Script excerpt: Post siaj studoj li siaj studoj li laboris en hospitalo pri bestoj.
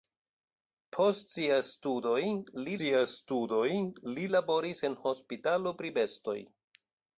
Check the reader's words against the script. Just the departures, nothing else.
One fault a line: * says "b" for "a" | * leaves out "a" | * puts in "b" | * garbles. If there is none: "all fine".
all fine